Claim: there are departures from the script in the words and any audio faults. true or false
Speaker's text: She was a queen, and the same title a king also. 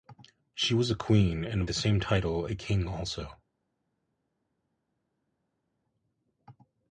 false